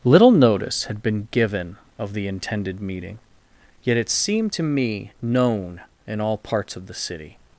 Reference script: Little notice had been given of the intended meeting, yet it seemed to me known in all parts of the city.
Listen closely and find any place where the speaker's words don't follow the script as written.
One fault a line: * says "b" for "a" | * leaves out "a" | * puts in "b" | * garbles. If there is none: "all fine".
all fine